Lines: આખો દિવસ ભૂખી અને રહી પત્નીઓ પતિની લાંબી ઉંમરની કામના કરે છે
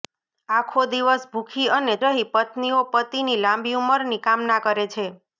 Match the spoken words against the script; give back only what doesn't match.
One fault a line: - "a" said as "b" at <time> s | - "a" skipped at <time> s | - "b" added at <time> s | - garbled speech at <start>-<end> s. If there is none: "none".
none